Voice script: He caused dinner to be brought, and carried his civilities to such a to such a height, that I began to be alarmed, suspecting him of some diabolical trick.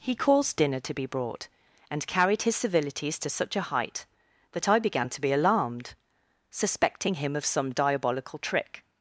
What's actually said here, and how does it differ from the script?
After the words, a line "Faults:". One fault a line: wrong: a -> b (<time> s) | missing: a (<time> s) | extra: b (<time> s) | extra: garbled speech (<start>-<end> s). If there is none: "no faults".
He caused dinner to be brought, and carried his civilities to such a height, that I began to be alarmed, suspecting him of some diabolical trick.
Faults:
missing: to such a (3.7 s)